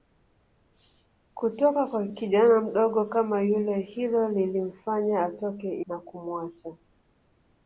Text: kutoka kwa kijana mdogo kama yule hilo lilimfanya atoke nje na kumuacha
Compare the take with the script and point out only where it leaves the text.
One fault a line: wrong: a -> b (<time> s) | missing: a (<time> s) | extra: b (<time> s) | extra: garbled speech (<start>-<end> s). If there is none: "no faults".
missing: nje (5.9 s)